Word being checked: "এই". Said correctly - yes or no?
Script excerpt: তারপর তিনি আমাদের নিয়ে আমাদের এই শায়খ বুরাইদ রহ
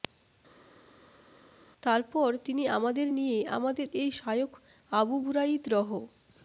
yes